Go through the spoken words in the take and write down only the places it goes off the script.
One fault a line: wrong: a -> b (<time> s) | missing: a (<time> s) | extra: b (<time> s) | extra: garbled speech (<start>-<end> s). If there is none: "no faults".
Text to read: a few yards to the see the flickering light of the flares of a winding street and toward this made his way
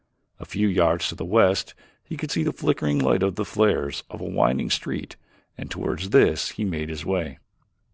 extra: west he could (1.2 s)
extra: he (6.5 s)